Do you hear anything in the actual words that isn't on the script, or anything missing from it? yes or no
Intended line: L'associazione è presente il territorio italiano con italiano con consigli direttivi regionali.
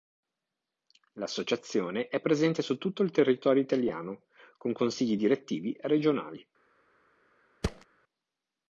yes